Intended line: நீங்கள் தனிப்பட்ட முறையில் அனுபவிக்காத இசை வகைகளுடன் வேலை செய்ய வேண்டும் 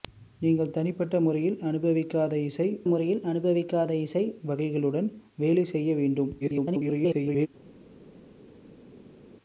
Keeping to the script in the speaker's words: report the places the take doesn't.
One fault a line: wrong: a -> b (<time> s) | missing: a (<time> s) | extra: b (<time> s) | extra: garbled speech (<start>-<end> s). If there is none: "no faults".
extra: முறையில் அனுபவிக்காத இசை (2.9 s)
extra: garbled speech (6.4-7.5 s)